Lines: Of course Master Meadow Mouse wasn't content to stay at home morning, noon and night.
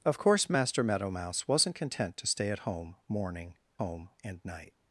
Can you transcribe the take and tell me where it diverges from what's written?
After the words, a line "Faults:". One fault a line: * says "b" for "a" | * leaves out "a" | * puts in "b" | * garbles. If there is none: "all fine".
Of course Master Meadow Mouse wasn't content to stay at home morning, home and night.
Faults:
* says "home" for "noon"